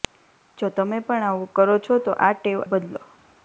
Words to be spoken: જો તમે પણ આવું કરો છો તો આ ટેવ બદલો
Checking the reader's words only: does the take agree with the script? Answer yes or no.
yes